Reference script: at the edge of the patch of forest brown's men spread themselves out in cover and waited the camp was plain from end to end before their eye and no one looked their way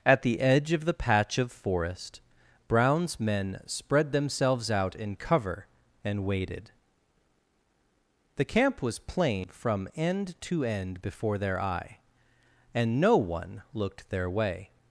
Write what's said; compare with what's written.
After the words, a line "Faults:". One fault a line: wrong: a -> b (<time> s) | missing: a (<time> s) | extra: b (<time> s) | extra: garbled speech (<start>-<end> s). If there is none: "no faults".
at the edge of the patch of forest brown's men spread themselves out in cover and waited the camp was plain from end to end before their eye and no one looked their way
Faults:
no faults